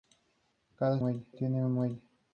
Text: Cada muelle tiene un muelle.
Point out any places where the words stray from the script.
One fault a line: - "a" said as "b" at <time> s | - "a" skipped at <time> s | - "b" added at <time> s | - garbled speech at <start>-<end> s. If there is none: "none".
none